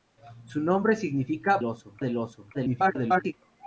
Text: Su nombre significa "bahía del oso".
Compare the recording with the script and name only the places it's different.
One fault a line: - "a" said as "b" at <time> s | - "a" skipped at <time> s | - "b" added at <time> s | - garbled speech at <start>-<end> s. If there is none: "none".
- "bahía" said as "oso" at 1.6 s
- garbled speech at 2.5-3.3 s